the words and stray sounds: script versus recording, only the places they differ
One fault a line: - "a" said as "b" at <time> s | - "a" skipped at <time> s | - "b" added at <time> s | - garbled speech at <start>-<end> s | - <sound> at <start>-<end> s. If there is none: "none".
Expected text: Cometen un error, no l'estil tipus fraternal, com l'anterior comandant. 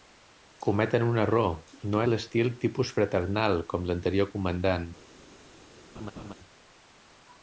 - laugh at 6.0-6.3 s